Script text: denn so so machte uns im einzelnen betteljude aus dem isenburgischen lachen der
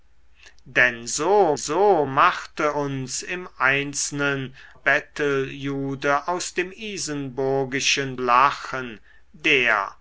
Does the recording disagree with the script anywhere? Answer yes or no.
no